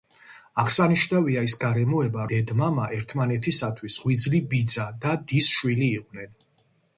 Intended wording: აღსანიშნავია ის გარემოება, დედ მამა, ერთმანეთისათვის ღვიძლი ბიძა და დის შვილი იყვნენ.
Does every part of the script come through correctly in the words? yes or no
yes